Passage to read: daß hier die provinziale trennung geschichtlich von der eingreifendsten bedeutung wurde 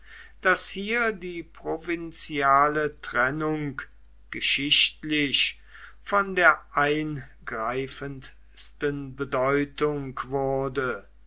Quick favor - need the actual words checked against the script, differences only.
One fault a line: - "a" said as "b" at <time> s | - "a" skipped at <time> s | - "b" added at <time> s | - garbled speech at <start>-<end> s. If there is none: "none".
none